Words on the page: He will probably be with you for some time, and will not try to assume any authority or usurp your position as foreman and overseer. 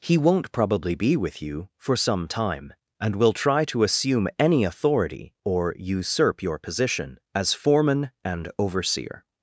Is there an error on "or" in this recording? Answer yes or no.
no